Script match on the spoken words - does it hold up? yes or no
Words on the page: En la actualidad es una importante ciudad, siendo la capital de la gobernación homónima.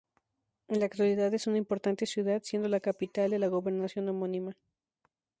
yes